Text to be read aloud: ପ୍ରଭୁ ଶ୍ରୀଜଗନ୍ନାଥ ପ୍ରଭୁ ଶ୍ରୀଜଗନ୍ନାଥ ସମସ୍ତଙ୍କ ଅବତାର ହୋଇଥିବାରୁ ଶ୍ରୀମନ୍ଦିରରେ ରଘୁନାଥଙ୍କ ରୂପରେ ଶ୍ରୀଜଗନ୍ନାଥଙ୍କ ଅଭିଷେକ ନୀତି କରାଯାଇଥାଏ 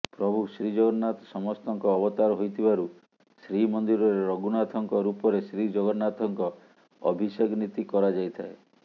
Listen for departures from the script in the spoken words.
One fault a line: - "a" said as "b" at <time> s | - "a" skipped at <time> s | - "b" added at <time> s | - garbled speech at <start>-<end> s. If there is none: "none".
- "ପ୍ରଭୁ ଶ୍ରୀଜଗନ୍ନାଥ" skipped at 1.3 s